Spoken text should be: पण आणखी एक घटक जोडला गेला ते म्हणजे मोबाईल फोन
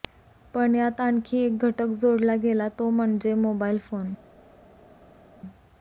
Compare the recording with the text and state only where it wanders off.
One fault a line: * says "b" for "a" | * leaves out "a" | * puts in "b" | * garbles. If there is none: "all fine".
* puts in "यात"
* says "तो" for "ते"